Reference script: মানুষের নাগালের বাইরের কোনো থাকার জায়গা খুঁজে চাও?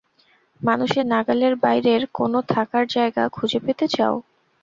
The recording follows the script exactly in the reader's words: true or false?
false